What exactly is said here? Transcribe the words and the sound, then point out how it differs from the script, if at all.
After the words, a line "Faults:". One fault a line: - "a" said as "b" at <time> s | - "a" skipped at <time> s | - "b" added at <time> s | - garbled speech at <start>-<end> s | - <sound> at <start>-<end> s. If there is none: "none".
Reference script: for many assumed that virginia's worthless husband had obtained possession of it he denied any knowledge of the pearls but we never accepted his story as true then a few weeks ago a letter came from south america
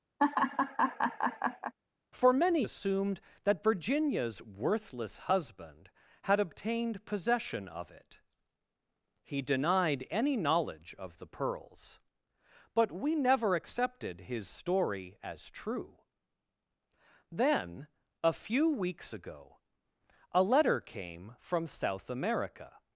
for many assumed that virginia's worthless husband had obtained possession of it he denied any knowledge of the pearls but we never accepted his story as true then a few weeks ago a letter came from south america
Faults:
- laugh at 0.2-1.7 s